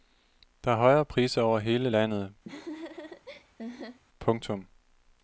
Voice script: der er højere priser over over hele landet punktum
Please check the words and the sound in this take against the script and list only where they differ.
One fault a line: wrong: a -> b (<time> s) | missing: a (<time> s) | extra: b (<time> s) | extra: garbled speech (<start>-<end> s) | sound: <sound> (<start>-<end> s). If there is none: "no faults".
missing: over (1.6 s)
sound: laugh (2.5-4.0 s)